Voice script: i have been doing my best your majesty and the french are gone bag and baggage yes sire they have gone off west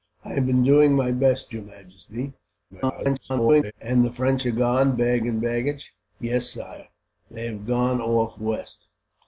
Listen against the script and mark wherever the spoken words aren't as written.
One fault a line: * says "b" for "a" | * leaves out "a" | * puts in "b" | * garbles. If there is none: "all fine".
* garbles